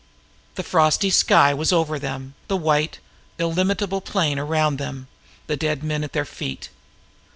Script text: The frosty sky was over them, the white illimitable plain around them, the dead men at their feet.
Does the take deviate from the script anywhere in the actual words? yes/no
no